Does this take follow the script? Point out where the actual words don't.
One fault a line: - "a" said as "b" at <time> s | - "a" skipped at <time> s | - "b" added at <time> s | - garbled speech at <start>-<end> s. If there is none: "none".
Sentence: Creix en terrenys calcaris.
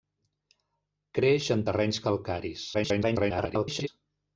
- garbled speech at 2.7-3.9 s